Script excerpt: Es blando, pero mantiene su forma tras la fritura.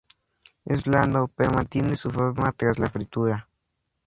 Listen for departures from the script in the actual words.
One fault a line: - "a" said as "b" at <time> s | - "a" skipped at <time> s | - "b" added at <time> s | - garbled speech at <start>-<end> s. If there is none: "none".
none